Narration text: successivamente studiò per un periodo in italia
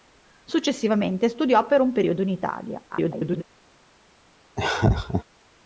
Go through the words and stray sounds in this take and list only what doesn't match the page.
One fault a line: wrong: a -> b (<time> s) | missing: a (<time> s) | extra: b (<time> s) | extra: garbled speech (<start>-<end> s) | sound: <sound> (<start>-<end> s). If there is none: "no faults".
extra: garbled speech (2.9-3.4 s)
sound: laugh (4.6-5.2 s)